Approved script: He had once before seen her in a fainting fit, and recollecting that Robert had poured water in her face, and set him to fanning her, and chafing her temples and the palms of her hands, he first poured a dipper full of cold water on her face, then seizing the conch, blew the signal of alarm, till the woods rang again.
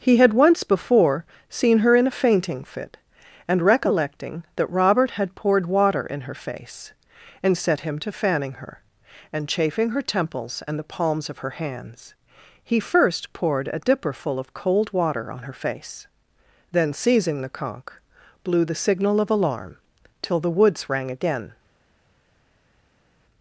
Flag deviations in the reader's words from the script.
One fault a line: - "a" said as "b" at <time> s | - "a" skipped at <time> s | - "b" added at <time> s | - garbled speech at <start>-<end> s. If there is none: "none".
none